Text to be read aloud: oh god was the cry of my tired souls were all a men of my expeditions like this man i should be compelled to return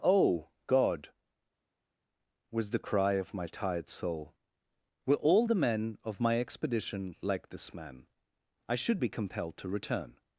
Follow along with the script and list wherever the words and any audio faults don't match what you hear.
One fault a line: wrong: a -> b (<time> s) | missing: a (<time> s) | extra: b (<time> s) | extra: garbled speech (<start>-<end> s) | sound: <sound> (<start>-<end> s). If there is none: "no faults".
wrong: souls -> soul (3.9 s)
wrong: a -> the (5.4 s)
wrong: expeditions -> expedition (6.4 s)